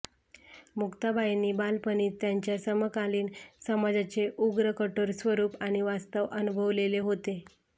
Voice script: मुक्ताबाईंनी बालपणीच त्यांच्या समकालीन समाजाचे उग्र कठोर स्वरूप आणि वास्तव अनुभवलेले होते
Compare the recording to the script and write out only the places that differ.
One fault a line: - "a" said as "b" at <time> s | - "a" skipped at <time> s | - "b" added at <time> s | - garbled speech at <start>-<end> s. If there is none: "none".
none